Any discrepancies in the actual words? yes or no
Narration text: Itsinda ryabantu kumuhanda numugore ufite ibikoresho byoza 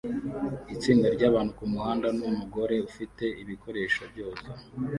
no